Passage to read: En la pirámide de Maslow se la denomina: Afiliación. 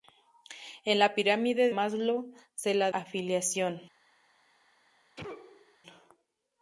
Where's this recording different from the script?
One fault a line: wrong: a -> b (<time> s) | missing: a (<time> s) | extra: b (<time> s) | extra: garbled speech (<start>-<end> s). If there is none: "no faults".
missing: de (1.7 s)
missing: denomina (2.9 s)